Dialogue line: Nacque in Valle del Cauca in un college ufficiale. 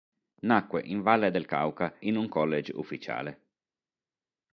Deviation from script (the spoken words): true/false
false